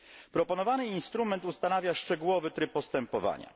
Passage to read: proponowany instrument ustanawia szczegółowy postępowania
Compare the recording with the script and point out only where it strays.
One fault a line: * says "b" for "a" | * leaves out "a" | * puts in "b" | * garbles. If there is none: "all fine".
* puts in "tryb"